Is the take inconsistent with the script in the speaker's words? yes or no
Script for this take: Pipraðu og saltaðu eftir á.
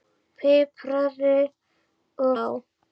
yes